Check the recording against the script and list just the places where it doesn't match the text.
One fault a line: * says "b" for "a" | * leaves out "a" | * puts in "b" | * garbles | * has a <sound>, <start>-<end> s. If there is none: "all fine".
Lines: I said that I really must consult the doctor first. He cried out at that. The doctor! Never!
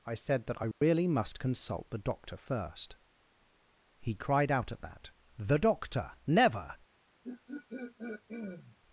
* has a dropout, 0.7-0.8 s
* has a throat clearing, 7.2-8.8 s